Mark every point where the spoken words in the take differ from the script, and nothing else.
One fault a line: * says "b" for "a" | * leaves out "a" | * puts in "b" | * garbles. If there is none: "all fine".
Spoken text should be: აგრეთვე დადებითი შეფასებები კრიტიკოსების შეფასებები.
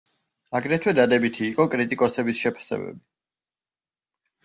* says "იყო" for "შეფასებები"